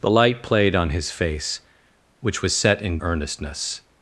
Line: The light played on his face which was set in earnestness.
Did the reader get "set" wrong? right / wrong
right